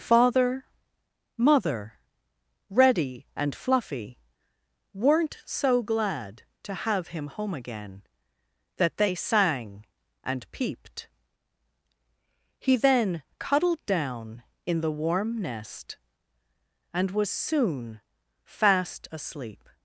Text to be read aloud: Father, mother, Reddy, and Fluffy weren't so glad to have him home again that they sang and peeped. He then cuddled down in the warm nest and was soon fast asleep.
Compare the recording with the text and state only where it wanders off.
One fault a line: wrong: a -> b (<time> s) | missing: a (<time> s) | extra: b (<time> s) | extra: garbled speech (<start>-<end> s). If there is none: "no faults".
no faults